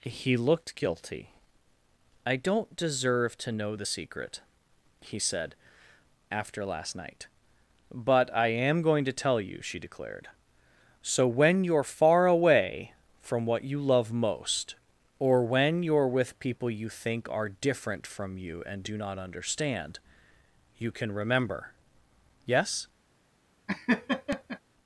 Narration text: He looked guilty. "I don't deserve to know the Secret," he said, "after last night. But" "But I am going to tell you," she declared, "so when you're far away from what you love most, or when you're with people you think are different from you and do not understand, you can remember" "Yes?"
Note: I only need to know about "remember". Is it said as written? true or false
true